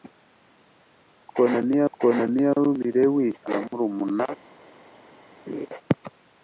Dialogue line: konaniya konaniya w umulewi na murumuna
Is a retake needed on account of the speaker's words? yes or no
no